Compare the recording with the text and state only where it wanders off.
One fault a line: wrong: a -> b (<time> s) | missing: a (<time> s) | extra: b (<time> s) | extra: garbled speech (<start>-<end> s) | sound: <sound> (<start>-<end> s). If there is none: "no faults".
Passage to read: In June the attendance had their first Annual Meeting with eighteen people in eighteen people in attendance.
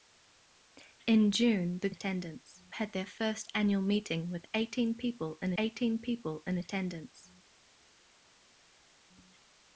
no faults